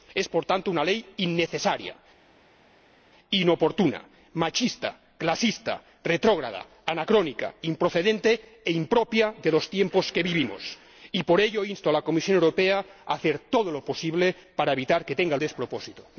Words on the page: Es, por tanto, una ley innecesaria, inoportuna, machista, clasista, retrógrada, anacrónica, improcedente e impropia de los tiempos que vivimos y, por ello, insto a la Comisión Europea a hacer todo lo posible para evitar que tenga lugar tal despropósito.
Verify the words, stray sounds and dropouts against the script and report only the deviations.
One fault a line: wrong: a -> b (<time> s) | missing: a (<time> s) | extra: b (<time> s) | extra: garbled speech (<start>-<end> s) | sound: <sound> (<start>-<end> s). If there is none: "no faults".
missing: lugar tal (15.4 s)